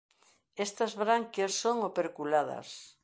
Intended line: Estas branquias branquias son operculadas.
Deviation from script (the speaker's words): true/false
true